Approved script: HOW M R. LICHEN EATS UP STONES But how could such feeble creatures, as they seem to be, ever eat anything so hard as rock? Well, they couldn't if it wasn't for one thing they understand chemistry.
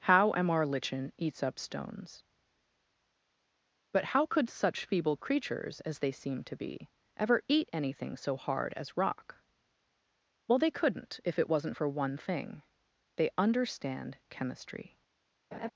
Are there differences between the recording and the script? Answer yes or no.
no